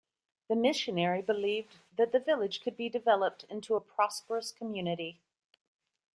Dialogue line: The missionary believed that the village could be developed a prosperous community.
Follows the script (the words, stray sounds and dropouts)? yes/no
no